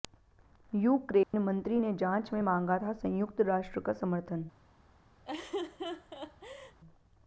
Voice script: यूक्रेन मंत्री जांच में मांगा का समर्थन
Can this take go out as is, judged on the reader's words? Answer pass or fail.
fail